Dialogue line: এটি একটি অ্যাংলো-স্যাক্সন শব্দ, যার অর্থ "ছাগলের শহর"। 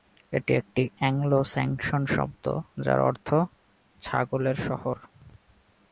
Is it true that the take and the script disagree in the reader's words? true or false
false